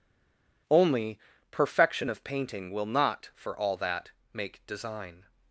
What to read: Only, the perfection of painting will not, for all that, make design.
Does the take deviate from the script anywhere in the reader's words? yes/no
yes